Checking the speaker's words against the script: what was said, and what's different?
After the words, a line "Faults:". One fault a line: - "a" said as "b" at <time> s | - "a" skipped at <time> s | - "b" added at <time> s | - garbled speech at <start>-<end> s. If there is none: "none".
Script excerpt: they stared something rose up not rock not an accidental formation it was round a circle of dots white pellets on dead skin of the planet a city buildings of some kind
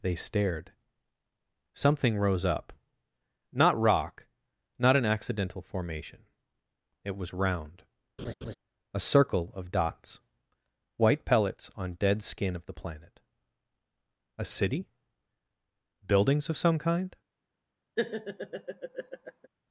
they stared something rose up not rock not an accidental formation it was round a circle of dots white pellets on dead skin of the planet a city buildings of some kind
Faults:
none